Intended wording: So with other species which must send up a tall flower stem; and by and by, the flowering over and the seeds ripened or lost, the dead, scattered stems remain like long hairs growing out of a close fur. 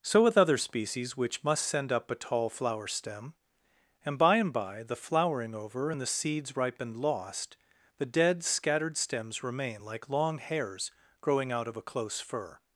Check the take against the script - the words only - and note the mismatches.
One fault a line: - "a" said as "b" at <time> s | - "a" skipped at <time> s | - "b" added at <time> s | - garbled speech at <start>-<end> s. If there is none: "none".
- "or" skipped at 7.0 s